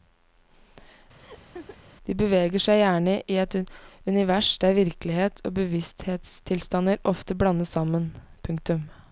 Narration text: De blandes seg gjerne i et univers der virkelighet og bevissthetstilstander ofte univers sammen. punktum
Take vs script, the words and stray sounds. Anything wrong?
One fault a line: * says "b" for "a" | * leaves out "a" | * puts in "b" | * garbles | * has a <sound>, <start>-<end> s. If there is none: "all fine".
* has a laugh, 1.2-1.8 s
* says "beveger" for "blandes"
* says "blandes" for "univers"